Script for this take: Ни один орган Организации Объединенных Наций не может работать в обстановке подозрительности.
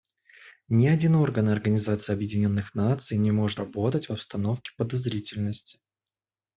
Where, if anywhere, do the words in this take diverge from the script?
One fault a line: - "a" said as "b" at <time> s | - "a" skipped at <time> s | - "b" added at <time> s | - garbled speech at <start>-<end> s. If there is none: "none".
none